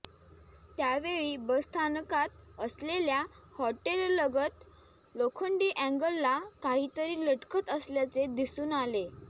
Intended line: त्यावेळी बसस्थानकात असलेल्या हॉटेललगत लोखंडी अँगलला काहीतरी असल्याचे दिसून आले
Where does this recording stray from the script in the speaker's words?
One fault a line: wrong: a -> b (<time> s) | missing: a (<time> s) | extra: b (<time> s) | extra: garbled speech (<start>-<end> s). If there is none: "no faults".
extra: लटकत (7.2 s)